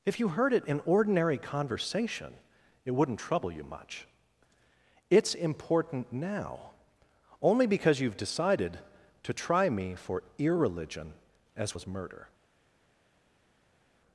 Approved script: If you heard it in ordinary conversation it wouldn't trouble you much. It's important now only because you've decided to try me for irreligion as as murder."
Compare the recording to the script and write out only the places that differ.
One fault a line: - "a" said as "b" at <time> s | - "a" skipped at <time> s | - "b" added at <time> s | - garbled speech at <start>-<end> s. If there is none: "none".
none